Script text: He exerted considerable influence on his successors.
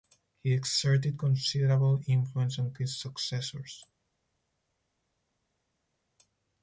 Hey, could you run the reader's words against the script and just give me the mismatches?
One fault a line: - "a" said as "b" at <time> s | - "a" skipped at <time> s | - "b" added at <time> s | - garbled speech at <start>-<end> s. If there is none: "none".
none